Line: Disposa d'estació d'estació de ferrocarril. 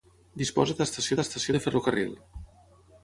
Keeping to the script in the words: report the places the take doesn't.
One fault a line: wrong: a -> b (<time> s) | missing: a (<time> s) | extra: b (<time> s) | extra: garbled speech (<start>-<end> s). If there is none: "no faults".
no faults